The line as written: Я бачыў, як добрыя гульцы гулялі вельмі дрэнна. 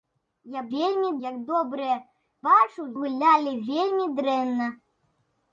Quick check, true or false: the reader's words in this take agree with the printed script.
false